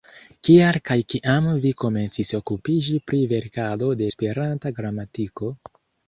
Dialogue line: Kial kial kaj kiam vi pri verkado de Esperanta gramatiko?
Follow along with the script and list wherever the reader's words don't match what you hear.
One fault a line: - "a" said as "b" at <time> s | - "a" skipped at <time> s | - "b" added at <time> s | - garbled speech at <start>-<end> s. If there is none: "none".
- "kial" skipped at 0.8 s
- "komencis okupiĝi" added at 1.8 s